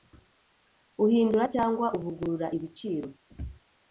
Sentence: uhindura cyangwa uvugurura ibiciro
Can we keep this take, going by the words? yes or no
yes